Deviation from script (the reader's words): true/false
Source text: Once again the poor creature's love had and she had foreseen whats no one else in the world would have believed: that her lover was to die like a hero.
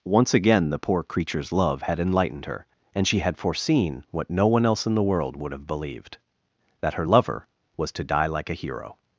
true